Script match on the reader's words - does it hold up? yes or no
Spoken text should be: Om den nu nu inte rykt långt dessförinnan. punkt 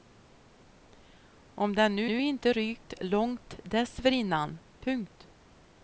yes